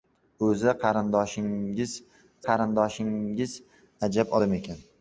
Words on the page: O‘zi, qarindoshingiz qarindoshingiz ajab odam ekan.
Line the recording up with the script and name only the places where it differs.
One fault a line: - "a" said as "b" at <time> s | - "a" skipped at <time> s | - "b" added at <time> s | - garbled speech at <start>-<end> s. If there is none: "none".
none